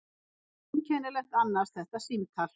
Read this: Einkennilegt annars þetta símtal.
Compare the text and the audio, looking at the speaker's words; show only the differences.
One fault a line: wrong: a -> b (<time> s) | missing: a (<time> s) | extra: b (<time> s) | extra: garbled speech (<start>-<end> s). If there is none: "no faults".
no faults